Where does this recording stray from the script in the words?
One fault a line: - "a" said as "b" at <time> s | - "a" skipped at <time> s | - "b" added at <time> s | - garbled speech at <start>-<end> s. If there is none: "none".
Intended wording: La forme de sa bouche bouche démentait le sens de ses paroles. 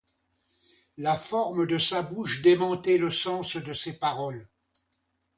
- "bouche" skipped at 2.4 s